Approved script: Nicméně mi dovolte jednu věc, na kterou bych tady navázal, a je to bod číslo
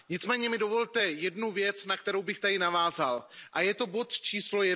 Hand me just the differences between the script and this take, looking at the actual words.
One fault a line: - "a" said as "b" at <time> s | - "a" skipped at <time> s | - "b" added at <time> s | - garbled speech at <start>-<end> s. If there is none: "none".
none